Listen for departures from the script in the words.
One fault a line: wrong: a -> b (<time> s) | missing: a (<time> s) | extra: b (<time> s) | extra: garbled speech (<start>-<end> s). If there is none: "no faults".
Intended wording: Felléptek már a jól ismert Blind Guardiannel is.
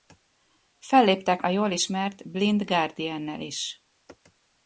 missing: már (1.4 s)